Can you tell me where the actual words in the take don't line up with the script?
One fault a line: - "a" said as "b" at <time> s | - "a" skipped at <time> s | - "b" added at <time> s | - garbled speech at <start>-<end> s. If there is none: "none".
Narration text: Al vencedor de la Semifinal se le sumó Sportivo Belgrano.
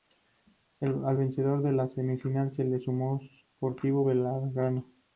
none